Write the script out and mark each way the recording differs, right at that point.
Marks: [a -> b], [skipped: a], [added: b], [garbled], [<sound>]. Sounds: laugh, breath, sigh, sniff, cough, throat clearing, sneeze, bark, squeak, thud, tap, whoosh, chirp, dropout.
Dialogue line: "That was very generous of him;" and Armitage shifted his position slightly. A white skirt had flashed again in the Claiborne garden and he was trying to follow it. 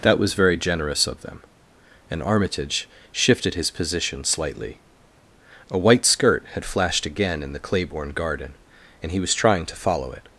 "That was very generous of [him;" -> them] and Armitage shifted his position slightly. A white skirt had flashed again in the Claiborne garden and he was trying to follow it.